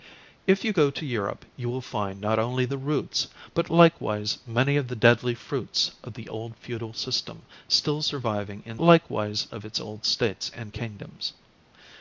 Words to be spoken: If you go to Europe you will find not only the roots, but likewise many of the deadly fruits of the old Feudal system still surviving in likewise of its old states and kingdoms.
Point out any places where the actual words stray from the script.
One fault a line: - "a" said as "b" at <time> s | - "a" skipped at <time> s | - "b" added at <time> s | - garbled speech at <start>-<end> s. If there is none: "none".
none